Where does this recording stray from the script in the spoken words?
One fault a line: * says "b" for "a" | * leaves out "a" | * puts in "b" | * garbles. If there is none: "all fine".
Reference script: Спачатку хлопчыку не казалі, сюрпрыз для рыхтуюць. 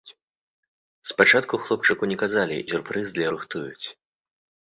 all fine